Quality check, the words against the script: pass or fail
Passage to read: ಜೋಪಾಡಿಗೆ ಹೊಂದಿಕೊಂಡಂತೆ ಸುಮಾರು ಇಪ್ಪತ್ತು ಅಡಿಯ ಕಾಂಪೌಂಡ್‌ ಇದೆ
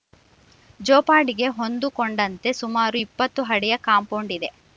pass